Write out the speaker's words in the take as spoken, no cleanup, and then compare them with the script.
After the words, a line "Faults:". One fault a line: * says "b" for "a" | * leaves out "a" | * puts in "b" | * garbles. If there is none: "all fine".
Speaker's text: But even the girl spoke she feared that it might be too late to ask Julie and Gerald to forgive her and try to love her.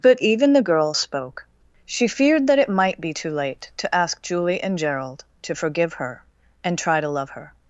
But even the girl spoke she feared that it might be too late to ask Julie and Gerald to forgive her and try to love her.
Faults:
all fine